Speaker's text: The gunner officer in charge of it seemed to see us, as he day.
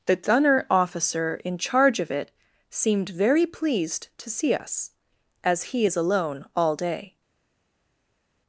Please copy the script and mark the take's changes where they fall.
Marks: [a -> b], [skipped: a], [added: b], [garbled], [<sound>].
The gunner officer in charge of it seemed [added: very pleased] to see us, as he [added: is alone all] day.